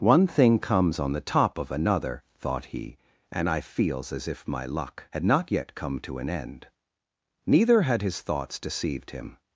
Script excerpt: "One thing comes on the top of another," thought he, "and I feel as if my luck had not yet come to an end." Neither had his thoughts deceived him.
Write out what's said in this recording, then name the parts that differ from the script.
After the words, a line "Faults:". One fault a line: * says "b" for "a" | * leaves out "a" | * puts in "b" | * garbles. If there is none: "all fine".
"One thing comes on the top of another," thought he, "and I feels as if my luck had not yet come to an end." Neither had his thoughts deceived him.
Faults:
* says "feels" for "feel"